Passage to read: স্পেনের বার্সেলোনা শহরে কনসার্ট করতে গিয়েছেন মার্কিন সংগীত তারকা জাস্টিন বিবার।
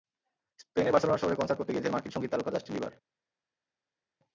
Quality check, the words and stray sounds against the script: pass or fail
pass